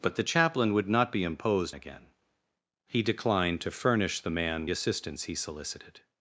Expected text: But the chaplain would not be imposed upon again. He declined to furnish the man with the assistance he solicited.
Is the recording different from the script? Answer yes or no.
yes